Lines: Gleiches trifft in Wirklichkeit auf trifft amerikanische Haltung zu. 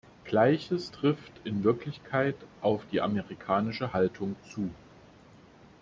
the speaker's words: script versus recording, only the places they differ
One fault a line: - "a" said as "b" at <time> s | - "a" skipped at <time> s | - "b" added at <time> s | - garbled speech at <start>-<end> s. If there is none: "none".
- "trifft" said as "die" at 2.9 s